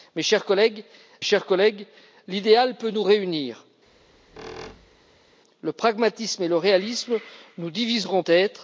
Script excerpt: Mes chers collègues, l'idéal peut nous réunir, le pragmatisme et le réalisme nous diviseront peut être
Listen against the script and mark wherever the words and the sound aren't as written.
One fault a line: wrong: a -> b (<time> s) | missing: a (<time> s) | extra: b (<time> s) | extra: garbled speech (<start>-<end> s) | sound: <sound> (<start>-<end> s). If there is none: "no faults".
extra: chers collègues (1.2 s)
sound: squeak (3.9-5.4 s)
missing: peut (8.2 s)